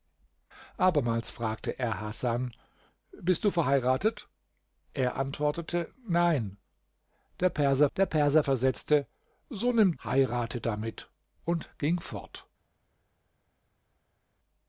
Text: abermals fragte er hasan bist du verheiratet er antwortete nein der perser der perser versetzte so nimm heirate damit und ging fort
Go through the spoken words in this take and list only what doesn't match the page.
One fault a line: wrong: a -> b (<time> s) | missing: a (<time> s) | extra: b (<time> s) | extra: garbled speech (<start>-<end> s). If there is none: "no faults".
no faults